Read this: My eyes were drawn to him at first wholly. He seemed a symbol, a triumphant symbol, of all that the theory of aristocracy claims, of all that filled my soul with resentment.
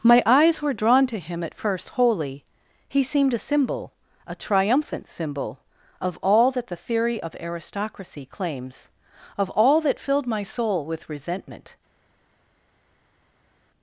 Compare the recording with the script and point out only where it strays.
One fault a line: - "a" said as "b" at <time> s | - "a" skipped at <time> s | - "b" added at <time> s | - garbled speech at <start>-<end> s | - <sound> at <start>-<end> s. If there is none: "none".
none